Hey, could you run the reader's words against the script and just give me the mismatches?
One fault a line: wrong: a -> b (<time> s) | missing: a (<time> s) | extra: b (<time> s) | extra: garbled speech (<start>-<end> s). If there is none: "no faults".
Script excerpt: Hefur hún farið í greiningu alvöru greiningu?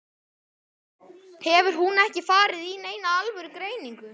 extra: ekki (2.0 s)
wrong: greiningu -> neina (2.9 s)